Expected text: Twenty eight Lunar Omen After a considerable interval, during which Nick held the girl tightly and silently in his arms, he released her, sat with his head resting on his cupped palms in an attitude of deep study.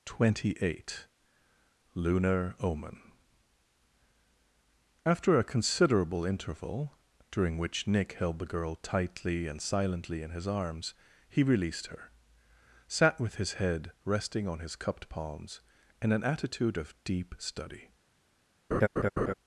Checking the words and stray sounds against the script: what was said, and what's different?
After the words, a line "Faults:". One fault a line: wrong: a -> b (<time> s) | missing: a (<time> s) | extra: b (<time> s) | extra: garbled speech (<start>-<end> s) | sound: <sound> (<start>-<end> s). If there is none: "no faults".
Twenty eight Lunar Omen After a considerable interval, during which Nick held the girl tightly and silently in his arms, he released her, sat with his head resting on his cupped palms in an attitude of deep study.
Faults:
sound: laugh (18.7-19.3 s)